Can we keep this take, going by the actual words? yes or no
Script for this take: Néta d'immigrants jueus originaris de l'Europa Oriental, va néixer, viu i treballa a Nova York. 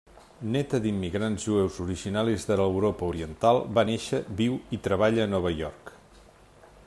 yes